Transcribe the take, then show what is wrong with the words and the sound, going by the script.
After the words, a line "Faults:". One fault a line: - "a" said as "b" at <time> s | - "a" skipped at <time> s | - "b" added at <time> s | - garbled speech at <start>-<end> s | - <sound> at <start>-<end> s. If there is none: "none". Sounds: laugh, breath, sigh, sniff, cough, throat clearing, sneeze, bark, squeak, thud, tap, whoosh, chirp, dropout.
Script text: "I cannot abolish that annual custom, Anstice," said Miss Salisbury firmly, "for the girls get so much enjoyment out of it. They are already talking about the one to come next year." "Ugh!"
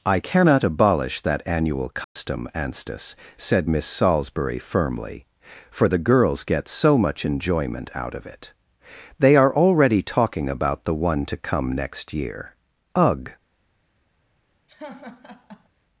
"I cannot abolish that annual custom, Anstice," said Miss Salisbury firmly, "for the girls get so much enjoyment out of it. They are already talking about the one to come next year." "Ugh!"
Faults:
- dropout at 2.0-2.2 s
- laugh at 14.7-15.7 s